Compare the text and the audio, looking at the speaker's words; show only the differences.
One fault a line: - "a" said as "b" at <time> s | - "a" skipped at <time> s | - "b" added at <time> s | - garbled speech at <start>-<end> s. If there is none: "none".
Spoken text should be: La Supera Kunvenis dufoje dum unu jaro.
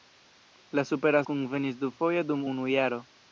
none